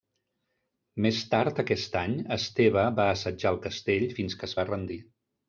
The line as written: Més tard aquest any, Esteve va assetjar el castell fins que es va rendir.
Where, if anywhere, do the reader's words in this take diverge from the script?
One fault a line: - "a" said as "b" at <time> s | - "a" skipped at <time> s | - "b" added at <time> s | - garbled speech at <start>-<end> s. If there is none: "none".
none